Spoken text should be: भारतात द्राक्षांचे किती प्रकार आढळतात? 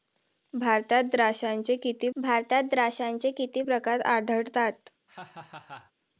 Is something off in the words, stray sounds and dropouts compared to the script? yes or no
yes